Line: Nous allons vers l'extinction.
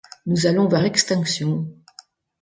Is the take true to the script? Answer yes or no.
yes